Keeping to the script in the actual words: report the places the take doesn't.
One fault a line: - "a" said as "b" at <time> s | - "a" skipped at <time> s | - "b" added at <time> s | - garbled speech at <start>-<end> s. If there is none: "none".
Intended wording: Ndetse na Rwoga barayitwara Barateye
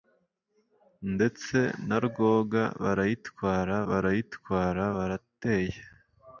- "barayitwara" added at 3.9 s